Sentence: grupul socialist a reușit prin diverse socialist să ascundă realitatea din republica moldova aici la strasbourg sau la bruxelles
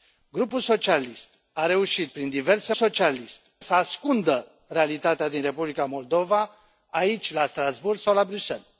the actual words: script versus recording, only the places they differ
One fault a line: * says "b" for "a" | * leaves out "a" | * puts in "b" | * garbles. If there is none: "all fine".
all fine